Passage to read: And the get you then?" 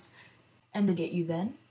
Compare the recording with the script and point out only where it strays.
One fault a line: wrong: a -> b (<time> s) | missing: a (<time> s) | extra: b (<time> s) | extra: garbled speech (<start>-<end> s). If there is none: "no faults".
no faults